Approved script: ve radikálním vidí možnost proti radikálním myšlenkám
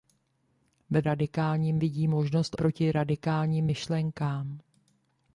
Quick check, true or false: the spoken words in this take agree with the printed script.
true